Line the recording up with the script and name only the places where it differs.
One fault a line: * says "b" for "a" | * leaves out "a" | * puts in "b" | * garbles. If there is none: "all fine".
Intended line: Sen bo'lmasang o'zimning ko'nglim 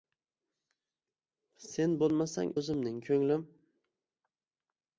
all fine